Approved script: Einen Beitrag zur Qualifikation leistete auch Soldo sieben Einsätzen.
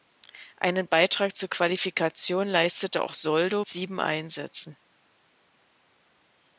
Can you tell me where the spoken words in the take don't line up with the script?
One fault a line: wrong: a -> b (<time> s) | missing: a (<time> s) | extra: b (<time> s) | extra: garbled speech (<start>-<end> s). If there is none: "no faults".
no faults